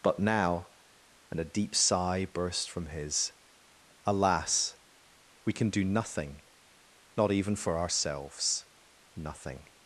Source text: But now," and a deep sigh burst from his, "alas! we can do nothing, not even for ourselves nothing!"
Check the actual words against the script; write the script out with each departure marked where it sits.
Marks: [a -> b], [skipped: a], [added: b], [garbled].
But now," and a deep sigh burst from his, "alas! we can do nothing, not even for ourselves nothing!"